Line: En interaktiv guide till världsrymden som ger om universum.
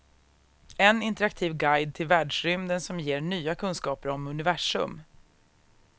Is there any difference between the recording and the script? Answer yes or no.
yes